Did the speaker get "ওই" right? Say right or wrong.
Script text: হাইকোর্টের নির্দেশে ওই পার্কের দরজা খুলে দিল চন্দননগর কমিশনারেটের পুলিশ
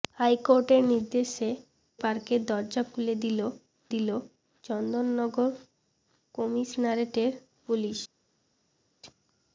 wrong